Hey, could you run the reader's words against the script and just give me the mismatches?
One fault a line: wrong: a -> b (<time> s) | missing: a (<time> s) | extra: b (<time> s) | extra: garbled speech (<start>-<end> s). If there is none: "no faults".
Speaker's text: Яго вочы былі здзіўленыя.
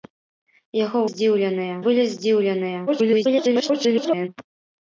wrong: вочы -> здзіўленыя (1.1 s)
extra: garbled speech (2.9-4.3 s)